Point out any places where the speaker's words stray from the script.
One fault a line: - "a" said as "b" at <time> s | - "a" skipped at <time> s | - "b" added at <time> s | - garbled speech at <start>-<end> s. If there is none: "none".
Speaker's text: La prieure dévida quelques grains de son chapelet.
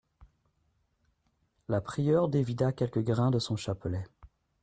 none